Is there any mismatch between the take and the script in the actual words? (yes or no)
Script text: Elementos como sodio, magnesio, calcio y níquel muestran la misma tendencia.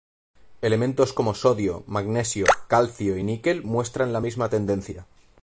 no